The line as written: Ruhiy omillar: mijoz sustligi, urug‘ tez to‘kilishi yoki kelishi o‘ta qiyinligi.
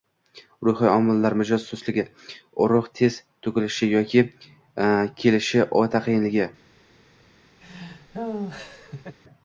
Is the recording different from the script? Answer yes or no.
no